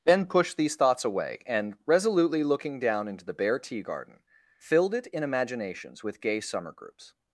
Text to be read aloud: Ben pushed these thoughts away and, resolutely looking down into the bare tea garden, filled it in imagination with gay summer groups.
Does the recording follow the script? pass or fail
fail